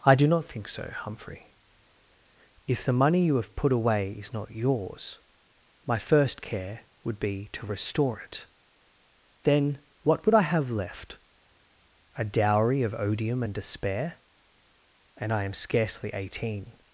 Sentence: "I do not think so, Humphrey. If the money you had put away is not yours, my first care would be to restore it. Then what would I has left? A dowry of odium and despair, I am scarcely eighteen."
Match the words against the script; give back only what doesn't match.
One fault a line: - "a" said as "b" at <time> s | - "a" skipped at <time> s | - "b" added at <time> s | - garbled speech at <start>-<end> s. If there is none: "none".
- "had" said as "have" at 3.4 s
- "has" said as "have" at 10.4 s
- "and" added at 15.2 s